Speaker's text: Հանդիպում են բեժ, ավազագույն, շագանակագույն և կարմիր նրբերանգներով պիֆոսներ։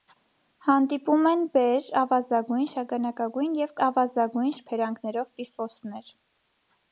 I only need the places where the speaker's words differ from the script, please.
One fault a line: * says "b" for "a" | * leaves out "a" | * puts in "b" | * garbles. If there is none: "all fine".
* says "ավազագույն" for "կարմիր"